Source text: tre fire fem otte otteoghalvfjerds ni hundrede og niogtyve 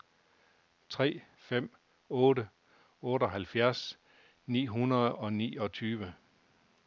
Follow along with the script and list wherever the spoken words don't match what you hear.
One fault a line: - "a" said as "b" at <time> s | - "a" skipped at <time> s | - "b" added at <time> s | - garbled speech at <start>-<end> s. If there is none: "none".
- "fire" skipped at 1.2 s